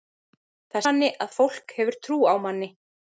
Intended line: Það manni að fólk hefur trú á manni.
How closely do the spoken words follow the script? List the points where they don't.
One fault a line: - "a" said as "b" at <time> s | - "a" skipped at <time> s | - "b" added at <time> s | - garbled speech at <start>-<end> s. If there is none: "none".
none